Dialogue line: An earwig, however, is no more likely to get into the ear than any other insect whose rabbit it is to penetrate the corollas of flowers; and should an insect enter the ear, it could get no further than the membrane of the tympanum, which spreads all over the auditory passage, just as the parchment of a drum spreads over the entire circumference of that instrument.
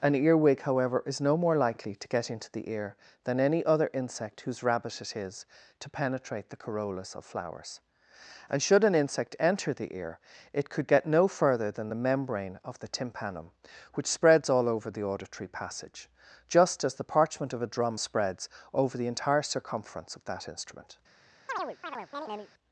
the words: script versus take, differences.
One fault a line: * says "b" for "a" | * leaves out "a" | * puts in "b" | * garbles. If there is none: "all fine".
all fine